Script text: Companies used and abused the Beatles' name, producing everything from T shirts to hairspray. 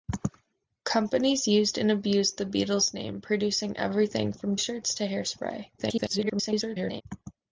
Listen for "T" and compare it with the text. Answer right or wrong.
wrong